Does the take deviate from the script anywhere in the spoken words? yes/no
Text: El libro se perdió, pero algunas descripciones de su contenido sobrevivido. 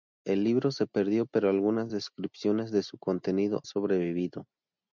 no